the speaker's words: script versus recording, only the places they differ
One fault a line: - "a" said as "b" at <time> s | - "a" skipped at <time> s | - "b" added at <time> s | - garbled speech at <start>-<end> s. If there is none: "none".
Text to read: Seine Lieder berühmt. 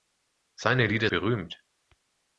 none